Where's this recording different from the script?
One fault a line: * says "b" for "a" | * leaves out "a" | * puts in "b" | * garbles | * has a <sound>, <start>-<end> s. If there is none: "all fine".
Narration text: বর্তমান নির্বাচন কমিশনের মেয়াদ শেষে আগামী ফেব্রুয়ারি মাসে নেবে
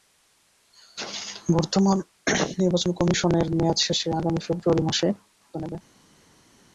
all fine